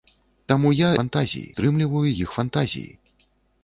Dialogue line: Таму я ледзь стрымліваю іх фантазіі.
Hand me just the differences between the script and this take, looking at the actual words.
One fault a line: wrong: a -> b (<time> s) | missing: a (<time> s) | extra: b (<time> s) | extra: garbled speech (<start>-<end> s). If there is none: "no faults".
wrong: ледзь -> фантазіі (1.0 s)